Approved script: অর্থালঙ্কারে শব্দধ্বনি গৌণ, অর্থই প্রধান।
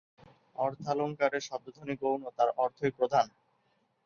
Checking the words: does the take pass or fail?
fail